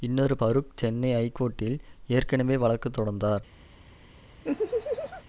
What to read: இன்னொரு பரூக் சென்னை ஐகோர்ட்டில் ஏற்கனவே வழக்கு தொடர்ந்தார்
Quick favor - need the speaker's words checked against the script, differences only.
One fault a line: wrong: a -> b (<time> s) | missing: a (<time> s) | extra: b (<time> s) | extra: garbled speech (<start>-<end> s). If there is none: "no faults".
no faults